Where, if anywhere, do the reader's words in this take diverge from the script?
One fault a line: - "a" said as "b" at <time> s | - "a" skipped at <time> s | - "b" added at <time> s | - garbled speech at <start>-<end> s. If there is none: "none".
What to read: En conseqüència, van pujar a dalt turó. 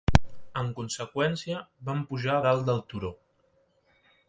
- "del" added at 2.7 s